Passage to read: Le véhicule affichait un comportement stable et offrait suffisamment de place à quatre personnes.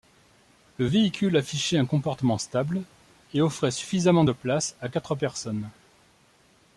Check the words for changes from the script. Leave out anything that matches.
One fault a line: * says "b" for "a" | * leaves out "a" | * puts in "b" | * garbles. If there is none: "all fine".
all fine